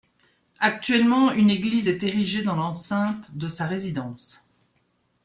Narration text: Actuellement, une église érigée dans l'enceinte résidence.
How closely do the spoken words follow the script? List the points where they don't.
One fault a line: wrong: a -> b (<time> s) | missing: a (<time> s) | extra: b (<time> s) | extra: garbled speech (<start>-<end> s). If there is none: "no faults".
extra: est (1.9 s)
extra: de sa (3.3 s)